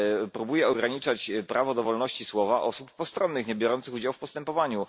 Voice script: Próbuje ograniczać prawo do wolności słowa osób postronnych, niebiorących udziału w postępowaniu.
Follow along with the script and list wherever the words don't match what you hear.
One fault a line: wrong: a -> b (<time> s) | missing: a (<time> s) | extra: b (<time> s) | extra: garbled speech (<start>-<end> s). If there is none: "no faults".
no faults